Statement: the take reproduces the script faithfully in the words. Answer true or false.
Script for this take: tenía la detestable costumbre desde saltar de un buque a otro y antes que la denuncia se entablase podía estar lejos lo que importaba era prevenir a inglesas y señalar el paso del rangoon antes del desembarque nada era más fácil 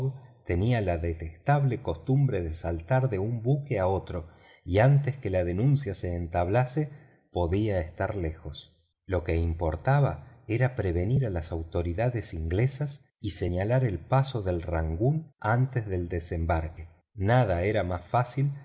false